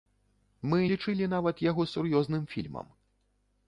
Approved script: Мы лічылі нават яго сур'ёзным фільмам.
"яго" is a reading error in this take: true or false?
false